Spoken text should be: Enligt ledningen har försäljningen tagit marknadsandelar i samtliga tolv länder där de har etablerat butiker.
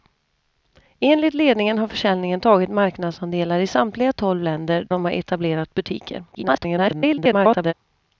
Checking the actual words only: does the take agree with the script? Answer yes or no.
no